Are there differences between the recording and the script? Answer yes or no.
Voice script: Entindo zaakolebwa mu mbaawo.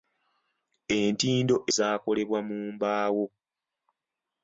no